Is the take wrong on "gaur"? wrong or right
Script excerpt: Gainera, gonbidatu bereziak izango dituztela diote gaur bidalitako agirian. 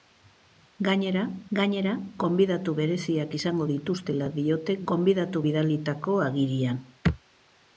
wrong